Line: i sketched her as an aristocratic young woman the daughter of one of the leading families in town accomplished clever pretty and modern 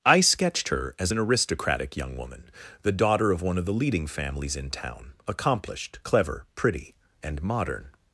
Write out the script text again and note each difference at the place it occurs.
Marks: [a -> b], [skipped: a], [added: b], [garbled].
i sketched her as an aristocratic young woman the daughter of one of the leading families in town accomplished clever pretty and modern